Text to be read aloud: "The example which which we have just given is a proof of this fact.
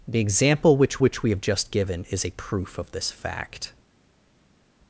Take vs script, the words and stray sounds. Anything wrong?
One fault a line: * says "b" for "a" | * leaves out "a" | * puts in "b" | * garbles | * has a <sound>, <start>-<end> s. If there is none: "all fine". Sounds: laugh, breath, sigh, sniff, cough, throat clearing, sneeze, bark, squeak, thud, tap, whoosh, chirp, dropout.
all fine